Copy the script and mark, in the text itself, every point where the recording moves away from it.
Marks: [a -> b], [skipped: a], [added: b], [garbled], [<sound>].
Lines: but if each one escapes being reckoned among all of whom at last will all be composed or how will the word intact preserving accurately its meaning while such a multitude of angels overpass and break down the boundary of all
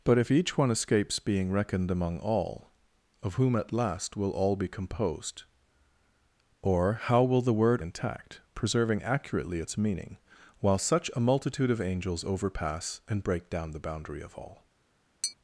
but if each one escapes being reckoned among all of whom at last will all be composed or how will the word intact preserving accurately its meaning while such a multitude of angels overpass and break down the boundary of all [tap]